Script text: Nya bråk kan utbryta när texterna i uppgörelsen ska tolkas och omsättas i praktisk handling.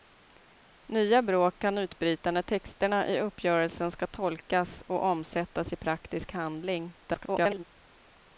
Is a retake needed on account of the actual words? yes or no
yes